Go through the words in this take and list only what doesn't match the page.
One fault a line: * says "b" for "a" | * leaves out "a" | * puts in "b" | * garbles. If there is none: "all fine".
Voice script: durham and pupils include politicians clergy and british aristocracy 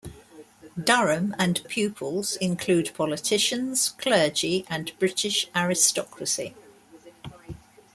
all fine